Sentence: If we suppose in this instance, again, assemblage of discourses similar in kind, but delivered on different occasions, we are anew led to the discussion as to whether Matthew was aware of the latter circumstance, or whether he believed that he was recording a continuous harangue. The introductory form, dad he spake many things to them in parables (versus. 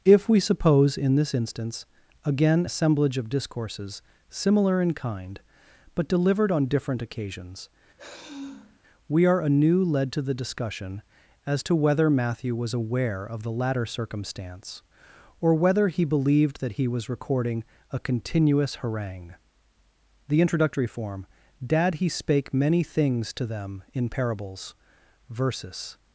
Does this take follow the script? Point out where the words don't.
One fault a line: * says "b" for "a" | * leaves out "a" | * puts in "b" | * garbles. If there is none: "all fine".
all fine